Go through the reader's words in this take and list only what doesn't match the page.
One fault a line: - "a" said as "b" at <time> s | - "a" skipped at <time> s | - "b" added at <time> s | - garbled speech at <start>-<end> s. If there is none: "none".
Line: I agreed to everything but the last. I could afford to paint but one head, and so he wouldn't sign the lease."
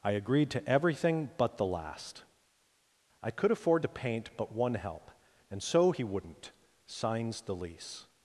- "head" said as "help" at 4.8 s
- "sign" said as "signs" at 6.9 s